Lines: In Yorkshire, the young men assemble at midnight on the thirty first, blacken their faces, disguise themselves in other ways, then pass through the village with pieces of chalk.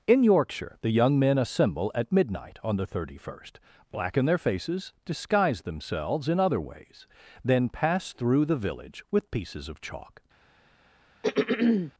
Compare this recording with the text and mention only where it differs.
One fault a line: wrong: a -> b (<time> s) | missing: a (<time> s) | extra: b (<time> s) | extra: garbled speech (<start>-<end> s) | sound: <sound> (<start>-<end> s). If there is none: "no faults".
sound: throat clearing (11.2-11.9 s)